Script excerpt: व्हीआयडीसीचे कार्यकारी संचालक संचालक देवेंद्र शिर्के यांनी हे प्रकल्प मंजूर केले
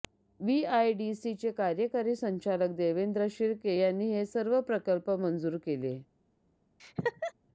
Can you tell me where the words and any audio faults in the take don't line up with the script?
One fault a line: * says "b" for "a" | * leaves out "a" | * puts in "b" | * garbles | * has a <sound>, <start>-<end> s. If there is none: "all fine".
* leaves out "संचालक"
* puts in "सर्व"
* has a laugh, 6.8-7.3 s